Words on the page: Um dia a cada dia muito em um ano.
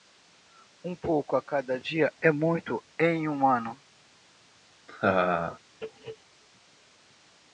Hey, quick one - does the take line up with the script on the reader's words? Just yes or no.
no